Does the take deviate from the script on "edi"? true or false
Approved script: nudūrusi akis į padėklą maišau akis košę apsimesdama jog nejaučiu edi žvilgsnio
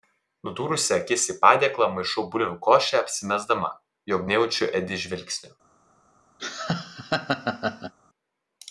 false